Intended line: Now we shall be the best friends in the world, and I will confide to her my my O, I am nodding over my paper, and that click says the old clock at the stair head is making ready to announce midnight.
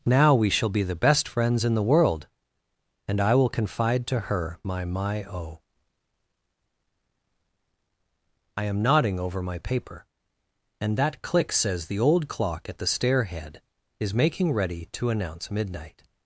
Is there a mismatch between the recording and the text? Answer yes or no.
no